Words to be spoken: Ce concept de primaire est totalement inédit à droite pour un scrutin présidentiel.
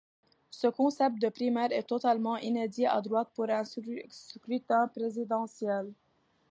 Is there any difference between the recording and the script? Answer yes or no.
no